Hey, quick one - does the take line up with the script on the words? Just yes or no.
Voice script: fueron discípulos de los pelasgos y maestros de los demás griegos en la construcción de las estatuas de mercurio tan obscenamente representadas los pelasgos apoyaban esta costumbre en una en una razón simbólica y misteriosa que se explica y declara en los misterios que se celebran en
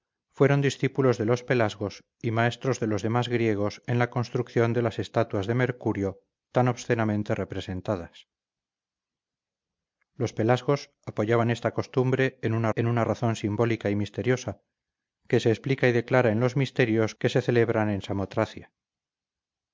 yes